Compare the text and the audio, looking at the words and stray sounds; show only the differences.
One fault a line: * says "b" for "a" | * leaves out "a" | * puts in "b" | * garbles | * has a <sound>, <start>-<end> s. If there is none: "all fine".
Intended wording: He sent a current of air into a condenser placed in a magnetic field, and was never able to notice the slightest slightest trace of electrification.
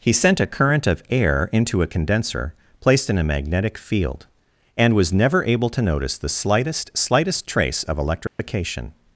* has a dropout, 8.3-8.4 s